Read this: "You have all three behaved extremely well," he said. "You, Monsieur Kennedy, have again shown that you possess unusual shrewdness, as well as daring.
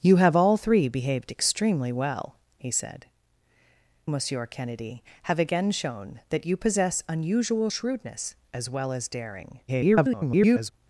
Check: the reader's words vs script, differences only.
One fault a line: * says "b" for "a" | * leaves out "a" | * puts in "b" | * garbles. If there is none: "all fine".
* leaves out "You"
* garbles